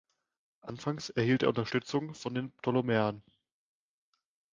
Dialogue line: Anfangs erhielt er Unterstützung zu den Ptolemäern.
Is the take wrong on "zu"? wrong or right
wrong